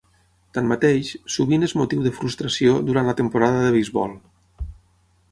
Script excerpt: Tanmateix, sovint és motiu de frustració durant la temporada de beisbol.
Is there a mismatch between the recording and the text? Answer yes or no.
no